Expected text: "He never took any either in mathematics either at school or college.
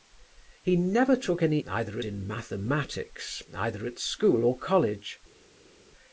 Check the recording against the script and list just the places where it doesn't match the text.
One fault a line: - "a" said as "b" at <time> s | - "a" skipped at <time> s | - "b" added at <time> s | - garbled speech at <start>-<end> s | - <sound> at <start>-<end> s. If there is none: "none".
none